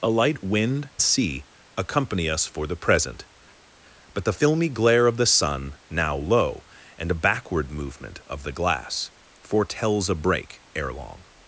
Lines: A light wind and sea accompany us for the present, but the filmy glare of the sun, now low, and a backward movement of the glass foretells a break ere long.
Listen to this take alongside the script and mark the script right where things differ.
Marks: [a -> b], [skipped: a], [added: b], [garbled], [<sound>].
A light wind [skipped: and] sea accompany us for the present, but the filmy glare of the sun, now low, and a backward movement of the glass foretells a break ere long.